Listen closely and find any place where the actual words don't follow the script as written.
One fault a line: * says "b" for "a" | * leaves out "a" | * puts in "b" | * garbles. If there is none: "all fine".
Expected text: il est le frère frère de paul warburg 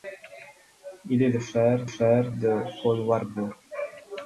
all fine